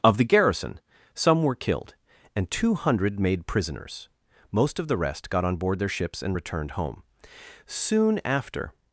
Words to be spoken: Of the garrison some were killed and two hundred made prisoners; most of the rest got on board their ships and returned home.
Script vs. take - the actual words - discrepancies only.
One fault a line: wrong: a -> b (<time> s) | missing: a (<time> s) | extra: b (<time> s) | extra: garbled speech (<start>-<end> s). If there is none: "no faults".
extra: Soon after (7.7 s)